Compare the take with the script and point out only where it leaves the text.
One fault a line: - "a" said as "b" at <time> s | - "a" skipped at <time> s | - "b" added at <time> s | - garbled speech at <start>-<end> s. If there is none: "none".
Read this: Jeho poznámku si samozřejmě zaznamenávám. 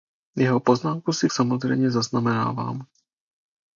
none